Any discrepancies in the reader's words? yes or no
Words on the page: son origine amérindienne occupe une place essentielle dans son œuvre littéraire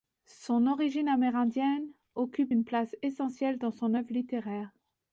no